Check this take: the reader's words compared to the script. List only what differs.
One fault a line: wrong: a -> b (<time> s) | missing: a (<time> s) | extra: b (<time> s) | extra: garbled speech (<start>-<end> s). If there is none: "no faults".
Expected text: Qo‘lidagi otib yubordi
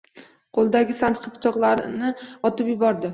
extra: sanchqi pichoqlarni (1.0 s)